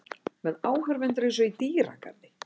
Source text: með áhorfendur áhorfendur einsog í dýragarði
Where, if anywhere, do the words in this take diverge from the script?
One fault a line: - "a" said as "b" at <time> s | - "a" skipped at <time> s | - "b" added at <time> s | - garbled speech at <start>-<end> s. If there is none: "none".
- "áhorfendur" skipped at 1.3 s